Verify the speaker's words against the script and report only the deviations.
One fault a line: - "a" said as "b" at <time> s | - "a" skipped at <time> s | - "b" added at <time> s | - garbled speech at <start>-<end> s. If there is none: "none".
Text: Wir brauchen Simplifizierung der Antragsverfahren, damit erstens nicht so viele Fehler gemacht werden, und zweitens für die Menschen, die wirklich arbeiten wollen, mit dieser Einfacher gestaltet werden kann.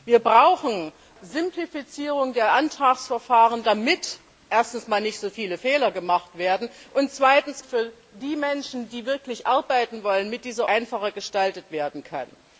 none